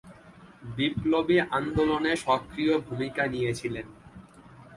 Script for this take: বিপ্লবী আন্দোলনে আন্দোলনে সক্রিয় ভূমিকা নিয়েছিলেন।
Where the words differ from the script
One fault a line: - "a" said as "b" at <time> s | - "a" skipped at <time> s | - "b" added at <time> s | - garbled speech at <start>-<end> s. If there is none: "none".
- "আন্দোলনে" skipped at 2.1 s